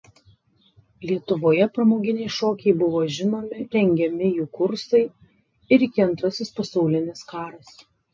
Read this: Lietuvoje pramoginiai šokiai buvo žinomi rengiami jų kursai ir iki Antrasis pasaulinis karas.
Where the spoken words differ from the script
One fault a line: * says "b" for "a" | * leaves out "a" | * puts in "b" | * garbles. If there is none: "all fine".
all fine